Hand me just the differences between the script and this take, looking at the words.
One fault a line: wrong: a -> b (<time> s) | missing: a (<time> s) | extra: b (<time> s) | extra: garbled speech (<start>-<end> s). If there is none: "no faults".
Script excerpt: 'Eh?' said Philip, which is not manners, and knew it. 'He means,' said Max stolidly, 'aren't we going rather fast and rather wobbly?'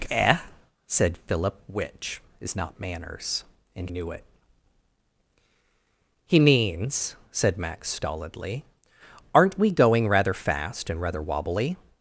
no faults